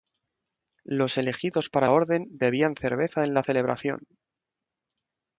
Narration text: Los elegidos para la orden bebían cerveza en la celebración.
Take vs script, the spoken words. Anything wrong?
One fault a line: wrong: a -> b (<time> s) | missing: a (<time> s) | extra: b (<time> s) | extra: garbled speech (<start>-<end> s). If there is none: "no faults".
missing: la (1.9 s)